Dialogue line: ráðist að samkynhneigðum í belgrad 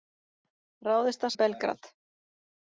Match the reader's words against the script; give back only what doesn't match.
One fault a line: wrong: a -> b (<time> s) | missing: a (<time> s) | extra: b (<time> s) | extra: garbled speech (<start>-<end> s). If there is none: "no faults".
missing: samkynhneigðum (1.3 s)